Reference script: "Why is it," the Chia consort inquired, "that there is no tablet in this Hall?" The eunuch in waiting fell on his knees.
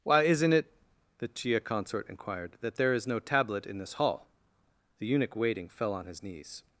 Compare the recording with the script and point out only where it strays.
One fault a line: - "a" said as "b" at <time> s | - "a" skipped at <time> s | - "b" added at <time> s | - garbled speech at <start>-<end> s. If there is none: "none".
- "is" said as "isn't" at 0.2 s
- "in" skipped at 5.3 s